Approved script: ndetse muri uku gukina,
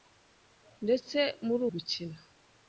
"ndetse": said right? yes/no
yes